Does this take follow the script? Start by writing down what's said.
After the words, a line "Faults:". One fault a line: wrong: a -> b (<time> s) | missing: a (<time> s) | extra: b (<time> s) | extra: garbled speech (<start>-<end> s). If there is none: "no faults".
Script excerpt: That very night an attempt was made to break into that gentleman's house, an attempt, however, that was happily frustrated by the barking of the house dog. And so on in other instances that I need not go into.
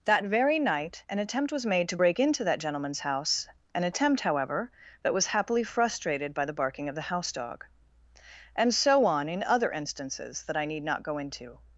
That very night an attempt was made to break into that gentleman's house, an attempt, however, that was happily frustrated by the barking of the house dog. And so on in other instances that I need not go into.
Faults:
no faults